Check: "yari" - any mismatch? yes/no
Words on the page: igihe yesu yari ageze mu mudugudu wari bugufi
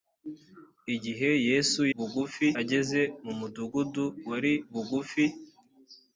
yes